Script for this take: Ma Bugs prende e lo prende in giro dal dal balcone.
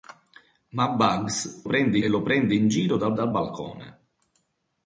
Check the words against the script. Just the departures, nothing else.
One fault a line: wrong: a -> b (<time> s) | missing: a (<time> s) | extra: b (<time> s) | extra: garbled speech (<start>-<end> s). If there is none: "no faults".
no faults